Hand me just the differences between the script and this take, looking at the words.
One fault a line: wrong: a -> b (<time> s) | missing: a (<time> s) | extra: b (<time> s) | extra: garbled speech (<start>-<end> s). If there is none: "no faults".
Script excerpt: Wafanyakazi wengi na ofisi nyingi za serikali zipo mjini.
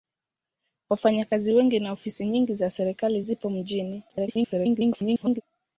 extra: garbled speech (4.1-5.4 s)